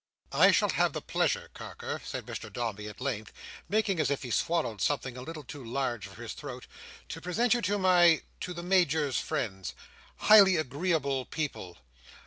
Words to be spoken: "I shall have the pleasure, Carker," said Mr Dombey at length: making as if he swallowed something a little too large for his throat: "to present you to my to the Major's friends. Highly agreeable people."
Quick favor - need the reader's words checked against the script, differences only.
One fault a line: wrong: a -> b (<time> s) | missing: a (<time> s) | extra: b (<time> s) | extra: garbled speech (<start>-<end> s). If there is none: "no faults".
no faults